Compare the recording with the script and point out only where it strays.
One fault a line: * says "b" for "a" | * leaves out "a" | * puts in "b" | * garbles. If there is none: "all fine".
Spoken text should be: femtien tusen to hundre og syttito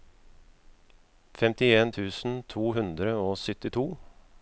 all fine